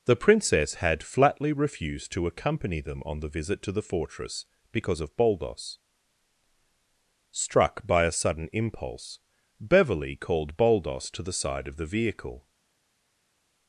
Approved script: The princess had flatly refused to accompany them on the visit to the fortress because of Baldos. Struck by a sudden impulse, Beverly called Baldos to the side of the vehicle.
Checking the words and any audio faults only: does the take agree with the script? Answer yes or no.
yes